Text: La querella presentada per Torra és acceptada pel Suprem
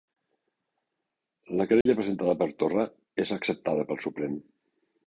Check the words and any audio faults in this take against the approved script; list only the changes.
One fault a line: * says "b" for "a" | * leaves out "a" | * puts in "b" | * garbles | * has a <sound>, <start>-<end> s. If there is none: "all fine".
* has a dropout, 1.8-1.9 s